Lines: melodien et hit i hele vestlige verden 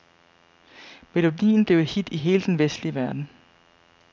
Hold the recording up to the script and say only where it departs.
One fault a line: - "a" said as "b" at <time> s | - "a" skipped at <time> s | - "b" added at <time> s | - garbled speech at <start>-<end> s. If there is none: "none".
- "blev" added at 1.6 s
- "den" added at 2.4 s